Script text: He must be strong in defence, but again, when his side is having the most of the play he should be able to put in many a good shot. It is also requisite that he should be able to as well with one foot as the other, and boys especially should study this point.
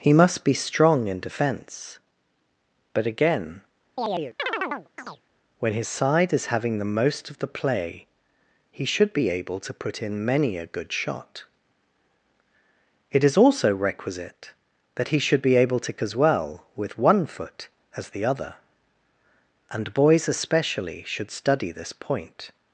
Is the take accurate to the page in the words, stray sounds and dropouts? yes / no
no